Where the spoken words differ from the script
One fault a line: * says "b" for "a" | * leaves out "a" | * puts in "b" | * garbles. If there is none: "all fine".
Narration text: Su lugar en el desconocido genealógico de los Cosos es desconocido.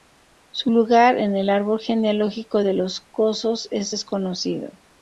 * says "árbol" for "desconocido"